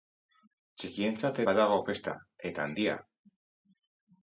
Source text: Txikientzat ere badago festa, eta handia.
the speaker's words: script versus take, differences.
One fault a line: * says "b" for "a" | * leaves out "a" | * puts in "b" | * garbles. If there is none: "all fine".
* leaves out "ere"